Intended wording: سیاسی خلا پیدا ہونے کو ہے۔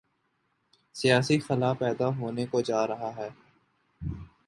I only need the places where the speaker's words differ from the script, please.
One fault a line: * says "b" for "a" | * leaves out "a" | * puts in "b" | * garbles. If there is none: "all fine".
* puts in "جارہا"